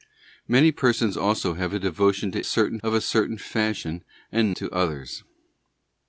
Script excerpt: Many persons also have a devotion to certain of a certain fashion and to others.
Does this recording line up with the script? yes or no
yes